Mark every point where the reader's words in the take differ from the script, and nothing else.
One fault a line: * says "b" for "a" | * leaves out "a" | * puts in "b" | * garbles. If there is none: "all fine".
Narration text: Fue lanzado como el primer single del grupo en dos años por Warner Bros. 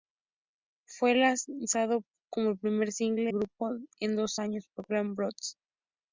* leaves out "del"